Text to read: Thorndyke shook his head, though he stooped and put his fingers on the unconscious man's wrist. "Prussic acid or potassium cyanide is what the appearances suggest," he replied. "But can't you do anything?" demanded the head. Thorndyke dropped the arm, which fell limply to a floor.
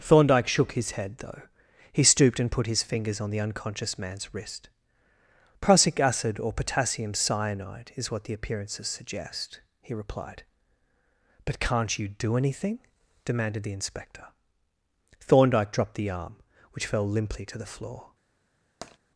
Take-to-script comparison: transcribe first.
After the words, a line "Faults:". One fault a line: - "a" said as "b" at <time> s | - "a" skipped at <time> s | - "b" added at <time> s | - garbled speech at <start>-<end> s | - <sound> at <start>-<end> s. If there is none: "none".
Thorndyke shook his head, though he stooped and put his fingers on the unconscious man's wrist. "Prussic acid or potassium cyanide is what the appearances suggest," he replied. "But can't you do anything?" demanded the inspector. Thorndyke dropped the arm, which fell limply to the floor.
Faults:
- "head" said as "inspector" at 13.7 s
- "a" said as "the" at 17.6 s
- tap at 18.8-19.0 s